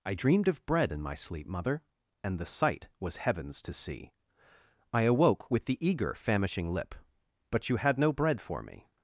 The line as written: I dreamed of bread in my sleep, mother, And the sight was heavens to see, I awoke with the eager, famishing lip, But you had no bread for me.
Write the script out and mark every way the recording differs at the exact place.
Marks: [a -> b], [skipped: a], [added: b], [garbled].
I dreamed of bread in my sleep, mother, And the sight was heavens to see, I awoke with the eager, famishing lip, But you had no bread for me.